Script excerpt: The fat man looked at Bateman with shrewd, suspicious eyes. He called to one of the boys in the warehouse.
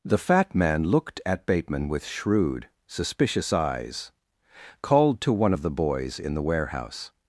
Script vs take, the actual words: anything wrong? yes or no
yes